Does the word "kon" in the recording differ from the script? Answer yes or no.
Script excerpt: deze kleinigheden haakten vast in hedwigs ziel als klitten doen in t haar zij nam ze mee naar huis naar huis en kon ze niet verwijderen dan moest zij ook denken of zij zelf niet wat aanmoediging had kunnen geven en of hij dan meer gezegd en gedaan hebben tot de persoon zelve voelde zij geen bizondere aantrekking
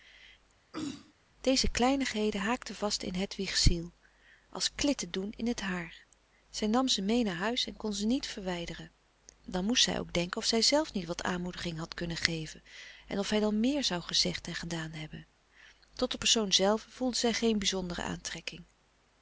no